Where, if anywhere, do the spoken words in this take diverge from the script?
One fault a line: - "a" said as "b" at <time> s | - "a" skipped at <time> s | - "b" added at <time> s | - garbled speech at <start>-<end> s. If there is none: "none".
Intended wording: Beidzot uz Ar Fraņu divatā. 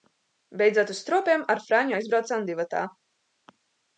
- "Stropiem" added at 1.0 s
- "aizbraucām" added at 2.0 s